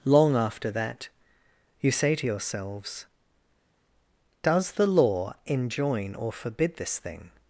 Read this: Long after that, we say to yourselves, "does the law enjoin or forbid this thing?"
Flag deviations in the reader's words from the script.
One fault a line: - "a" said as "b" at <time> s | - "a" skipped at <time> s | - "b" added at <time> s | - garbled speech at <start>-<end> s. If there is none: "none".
- "we" said as "you" at 1.8 s